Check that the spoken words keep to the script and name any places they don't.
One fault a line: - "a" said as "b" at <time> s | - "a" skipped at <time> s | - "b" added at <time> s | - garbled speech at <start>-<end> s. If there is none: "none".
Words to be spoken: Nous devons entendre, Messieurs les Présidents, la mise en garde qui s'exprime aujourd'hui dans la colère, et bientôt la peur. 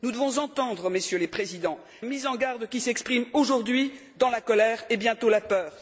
- "la" skipped at 1.8 s